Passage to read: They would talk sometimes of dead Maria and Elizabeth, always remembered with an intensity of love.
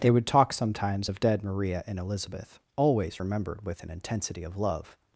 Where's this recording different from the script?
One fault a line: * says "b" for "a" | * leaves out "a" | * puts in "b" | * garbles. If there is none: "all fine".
all fine